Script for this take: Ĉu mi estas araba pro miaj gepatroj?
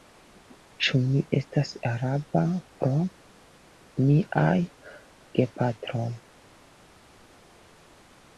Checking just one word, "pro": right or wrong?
right